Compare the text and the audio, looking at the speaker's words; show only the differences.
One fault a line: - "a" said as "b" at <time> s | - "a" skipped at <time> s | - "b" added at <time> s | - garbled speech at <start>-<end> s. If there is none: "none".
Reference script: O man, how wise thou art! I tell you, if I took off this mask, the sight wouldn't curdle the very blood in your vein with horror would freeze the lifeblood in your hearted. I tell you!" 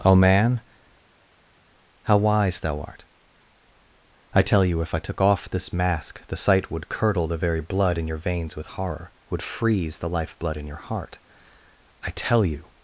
- "wouldn't" said as "would" at 6.7 s
- "vein" said as "veins" at 8.2 s
- "hearted" said as "heart" at 10.8 s